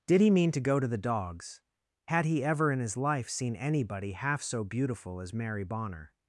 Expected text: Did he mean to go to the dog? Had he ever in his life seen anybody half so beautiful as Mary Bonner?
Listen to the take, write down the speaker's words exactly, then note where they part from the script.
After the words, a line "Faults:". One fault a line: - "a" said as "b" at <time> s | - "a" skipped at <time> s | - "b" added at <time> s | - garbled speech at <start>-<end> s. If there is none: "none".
Did he mean to go to the dogs? Had he ever in his life seen anybody half so beautiful as Mary Bonner?
Faults:
- "dog" said as "dogs" at 1.0 s